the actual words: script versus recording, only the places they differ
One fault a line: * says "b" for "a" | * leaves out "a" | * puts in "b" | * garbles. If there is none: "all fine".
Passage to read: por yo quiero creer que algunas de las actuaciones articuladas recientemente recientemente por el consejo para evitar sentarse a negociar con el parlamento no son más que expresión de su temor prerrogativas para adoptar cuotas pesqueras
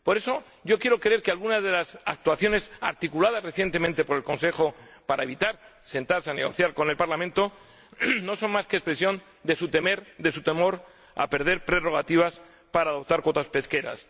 * puts in "eso"
* leaves out "recientemente"
* puts in "a perder"